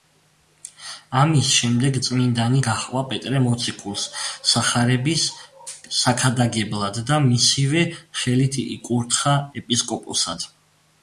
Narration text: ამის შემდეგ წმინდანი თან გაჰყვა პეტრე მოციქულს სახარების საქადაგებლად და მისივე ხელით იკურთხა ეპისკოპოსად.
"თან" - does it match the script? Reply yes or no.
no